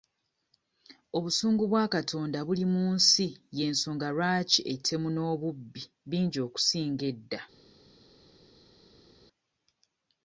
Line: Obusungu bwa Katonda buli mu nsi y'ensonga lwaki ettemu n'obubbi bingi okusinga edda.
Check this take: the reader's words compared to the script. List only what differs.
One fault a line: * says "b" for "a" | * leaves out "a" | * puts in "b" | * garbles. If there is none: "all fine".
all fine